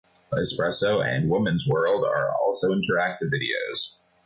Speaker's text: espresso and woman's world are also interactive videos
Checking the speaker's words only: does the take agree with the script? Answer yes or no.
yes